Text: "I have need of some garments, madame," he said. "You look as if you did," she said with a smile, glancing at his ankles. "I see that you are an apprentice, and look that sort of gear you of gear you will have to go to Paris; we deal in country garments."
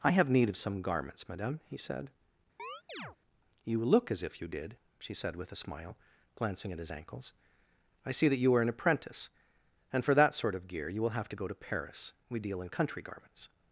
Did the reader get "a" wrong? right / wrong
right